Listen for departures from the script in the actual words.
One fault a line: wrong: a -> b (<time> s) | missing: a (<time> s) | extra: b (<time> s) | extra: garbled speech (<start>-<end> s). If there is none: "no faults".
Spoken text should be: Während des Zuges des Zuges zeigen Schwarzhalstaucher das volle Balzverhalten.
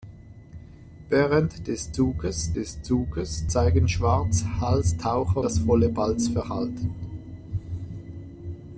no faults